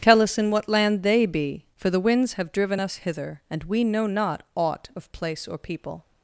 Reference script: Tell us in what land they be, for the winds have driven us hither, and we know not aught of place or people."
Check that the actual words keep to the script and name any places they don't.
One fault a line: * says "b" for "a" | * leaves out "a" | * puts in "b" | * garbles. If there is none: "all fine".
all fine